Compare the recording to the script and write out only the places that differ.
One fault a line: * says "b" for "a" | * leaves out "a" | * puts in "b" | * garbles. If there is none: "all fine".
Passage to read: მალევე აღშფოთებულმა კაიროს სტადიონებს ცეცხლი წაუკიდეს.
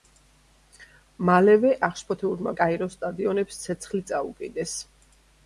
all fine